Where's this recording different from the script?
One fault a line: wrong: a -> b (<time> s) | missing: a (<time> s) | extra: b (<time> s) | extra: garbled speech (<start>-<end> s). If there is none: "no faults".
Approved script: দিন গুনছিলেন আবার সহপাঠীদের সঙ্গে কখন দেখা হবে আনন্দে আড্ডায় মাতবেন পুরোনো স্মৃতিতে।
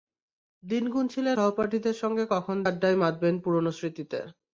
missing: আবার (1.4 s)
missing: দেখা হবে আনন্দে (2.6 s)